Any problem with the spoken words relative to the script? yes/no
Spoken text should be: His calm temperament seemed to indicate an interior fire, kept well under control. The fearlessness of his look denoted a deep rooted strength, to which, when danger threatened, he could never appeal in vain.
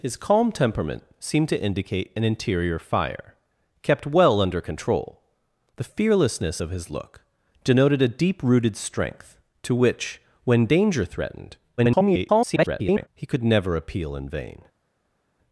yes